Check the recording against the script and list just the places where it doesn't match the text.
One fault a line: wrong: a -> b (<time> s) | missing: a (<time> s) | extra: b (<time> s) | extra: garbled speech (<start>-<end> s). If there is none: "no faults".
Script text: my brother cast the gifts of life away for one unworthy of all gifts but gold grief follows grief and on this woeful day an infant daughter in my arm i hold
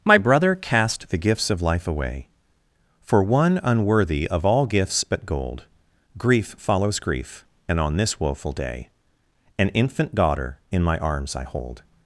wrong: arm -> arms (11.0 s)